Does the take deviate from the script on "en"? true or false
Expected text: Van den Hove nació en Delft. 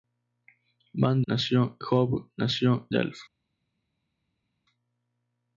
true